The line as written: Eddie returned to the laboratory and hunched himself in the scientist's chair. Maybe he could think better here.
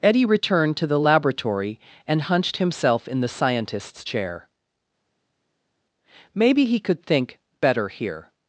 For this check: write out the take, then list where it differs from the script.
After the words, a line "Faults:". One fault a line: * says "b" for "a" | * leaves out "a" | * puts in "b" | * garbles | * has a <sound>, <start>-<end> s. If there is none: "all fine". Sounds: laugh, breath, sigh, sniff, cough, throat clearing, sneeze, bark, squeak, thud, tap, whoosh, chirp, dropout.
Eddie returned to the laboratory and hunched himself in the scientist's chair. Maybe he could think better here.
Faults:
all fine